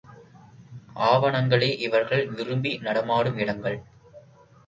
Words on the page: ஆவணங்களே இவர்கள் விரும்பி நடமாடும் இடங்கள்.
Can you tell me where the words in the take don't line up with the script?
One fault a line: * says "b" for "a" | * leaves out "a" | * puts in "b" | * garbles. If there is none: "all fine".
all fine